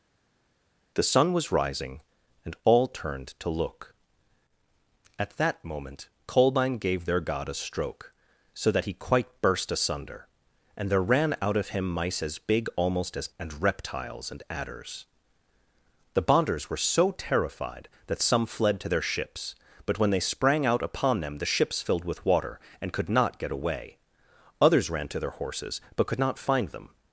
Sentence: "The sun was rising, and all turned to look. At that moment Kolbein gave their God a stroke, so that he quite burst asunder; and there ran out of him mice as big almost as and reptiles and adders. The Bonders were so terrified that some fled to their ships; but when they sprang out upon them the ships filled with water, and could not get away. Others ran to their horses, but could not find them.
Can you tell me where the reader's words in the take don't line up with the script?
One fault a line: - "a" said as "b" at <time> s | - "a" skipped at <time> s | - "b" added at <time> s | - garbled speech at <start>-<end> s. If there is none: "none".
none